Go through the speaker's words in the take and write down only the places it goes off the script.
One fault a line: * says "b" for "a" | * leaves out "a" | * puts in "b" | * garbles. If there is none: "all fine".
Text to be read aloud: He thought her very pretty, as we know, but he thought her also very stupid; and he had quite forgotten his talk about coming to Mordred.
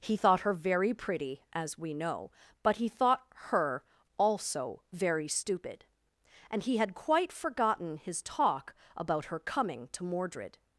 * puts in "her"